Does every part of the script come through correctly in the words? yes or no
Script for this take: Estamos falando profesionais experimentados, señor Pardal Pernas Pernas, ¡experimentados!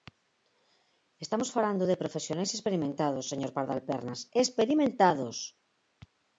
no